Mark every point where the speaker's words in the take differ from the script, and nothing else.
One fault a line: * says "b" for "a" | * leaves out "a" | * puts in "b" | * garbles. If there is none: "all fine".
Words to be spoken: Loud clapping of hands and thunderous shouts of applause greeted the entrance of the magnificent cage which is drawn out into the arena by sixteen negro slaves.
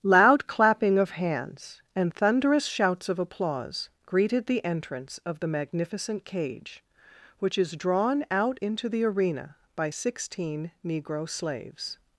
all fine